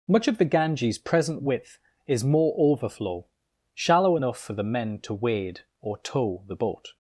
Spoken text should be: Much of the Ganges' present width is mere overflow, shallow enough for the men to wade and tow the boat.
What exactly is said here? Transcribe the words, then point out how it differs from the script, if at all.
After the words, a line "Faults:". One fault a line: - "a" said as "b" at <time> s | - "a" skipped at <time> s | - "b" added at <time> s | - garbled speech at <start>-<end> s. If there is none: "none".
Much of the Ganges' present width is more overflow, shallow enough for the men to wade or tow the boat.
Faults:
- "mere" said as "more" at 2.2 s
- "and" said as "or" at 5.8 s